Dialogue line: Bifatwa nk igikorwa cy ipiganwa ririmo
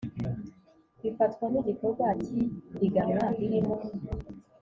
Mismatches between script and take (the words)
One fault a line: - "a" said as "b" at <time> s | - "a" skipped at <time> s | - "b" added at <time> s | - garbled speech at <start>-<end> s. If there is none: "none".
none